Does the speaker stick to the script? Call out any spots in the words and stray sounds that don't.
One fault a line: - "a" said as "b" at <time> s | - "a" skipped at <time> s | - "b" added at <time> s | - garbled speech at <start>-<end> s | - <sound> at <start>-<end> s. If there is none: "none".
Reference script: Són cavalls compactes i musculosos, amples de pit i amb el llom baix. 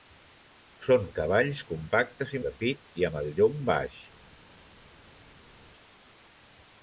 - "musculosos amples" skipped at 2.4 s